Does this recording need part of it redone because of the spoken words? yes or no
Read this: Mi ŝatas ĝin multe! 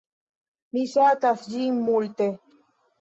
no